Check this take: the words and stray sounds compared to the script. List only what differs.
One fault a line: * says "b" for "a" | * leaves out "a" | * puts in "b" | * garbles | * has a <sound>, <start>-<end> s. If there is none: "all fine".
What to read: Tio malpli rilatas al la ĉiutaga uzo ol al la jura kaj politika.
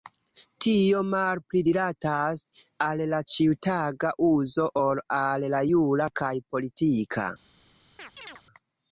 * has a chirp, 8.0-8.4 s